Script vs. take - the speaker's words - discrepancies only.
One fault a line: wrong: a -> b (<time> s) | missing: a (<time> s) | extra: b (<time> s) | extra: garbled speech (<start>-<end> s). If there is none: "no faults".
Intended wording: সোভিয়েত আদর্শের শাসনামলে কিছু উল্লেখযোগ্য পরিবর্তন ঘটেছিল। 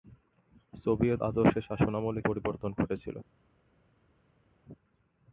missing: কিছু উল্লেখযোগ্য (2.2 s)